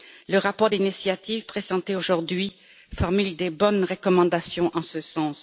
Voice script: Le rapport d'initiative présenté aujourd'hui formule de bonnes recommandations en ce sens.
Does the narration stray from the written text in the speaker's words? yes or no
no